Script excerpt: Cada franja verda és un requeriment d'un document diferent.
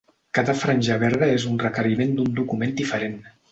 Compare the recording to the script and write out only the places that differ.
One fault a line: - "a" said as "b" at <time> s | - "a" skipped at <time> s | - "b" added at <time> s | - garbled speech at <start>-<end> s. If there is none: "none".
none